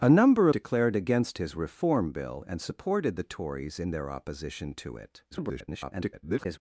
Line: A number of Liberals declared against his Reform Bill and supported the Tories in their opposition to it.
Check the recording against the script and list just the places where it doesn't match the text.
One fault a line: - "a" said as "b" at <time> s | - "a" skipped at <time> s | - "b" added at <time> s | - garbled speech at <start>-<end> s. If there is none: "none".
- "of Liberals" skipped at 0.5 s
- garbled speech at 5.3-6.6 s